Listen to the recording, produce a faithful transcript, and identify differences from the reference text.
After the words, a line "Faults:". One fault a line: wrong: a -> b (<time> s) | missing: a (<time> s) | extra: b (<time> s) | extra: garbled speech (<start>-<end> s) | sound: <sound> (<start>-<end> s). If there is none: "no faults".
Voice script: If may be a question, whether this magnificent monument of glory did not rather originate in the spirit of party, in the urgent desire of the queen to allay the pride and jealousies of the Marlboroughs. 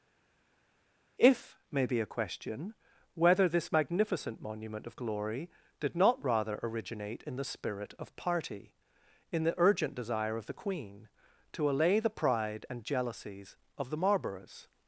If may be a question, whether this magnificent monument of glory did not rather originate in the spirit of party, in the urgent desire of the queen to allay the pride and jealousies of the Marlboroughs.
Faults:
no faults